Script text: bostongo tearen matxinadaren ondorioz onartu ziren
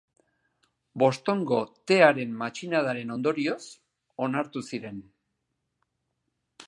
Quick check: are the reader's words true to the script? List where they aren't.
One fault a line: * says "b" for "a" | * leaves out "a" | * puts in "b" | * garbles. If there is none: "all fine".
all fine